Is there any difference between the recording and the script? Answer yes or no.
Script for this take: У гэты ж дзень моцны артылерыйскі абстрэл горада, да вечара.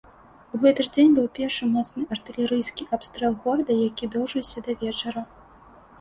yes